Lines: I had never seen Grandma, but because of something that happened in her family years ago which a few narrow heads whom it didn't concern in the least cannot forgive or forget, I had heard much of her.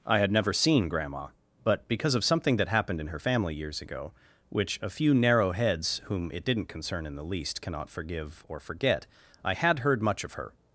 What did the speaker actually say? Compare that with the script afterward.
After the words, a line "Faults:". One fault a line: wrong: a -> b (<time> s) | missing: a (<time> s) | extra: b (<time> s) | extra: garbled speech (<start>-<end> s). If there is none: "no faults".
I had never seen Grandma, but because of something that happened in her family years ago which a few narrow heads whom it didn't concern in the least cannot forgive or forget, I had heard much of her.
Faults:
no faults